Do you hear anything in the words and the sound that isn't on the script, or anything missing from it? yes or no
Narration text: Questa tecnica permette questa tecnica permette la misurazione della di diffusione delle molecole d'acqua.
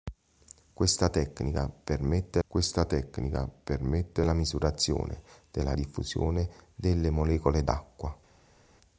no